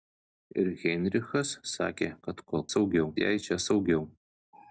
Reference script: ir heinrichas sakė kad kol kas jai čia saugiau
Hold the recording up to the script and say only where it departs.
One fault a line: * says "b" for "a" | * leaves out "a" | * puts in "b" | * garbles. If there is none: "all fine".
* says "saugiau" for "kas"